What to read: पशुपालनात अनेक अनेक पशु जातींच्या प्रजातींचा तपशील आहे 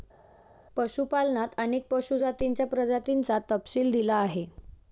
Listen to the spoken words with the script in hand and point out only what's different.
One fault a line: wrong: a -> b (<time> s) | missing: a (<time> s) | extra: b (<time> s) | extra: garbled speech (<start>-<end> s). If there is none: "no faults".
missing: अनेक (1.9 s)
extra: दिला (3.9 s)